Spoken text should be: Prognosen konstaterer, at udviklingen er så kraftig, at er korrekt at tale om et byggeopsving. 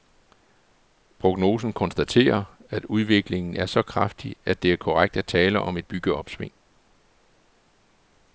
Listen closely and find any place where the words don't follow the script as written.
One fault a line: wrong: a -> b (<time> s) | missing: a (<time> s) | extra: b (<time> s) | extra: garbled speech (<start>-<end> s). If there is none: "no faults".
extra: det (4.6 s)